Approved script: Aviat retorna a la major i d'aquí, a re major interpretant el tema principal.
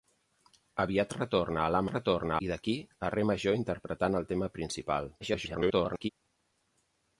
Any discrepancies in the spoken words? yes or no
yes